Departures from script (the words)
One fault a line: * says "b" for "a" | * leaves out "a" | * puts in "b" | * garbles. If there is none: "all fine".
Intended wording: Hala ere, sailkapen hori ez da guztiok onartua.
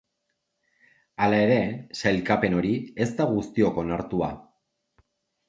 all fine